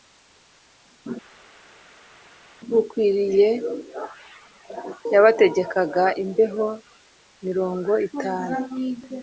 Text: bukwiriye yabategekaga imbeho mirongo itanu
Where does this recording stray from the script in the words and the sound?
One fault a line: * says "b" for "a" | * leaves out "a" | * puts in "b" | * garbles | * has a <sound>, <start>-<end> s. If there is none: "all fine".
all fine